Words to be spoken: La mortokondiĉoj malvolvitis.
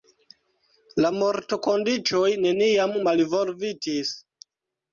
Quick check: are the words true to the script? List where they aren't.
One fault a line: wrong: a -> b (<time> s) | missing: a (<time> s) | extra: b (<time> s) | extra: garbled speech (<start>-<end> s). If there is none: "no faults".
extra: neniam (2.5 s)